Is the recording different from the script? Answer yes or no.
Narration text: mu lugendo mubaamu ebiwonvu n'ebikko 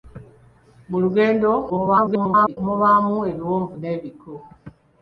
yes